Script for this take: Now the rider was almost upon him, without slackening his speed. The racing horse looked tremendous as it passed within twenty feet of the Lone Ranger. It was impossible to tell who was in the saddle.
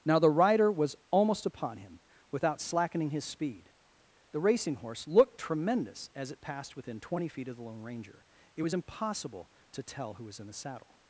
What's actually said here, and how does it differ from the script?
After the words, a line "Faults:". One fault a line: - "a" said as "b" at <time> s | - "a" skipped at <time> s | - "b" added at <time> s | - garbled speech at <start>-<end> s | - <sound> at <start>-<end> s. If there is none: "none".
Now the rider was almost upon him, without slackening his speed. The racing horse looked tremendous as it passed within twenty feet of the Lone Ranger. It was impossible to tell who was in the saddle.
Faults:
none